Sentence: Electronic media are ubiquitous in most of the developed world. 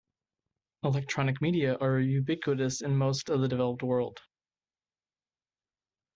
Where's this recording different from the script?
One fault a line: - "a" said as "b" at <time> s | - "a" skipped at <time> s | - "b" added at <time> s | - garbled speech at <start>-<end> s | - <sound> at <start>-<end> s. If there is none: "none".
none